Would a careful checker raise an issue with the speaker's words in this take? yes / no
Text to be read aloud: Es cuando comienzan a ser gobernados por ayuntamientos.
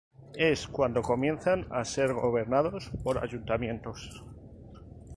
no